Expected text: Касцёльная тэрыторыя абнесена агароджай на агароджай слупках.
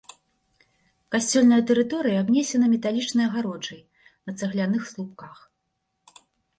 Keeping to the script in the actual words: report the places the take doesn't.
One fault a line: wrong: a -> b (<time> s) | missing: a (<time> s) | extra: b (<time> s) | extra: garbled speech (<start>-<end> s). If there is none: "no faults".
extra: металічнай (2.7 s)
wrong: агароджай -> цагляных (4.4 s)